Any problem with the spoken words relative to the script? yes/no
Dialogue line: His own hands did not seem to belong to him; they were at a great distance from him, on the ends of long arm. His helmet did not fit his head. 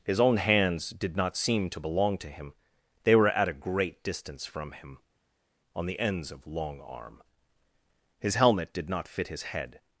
no